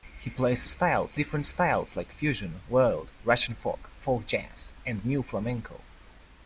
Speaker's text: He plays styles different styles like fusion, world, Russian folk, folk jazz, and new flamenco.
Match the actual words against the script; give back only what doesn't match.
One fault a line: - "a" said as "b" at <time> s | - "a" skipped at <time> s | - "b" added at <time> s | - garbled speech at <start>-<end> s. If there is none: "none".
none